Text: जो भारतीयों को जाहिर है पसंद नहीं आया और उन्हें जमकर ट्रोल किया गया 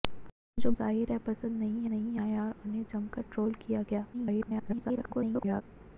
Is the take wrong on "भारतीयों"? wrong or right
wrong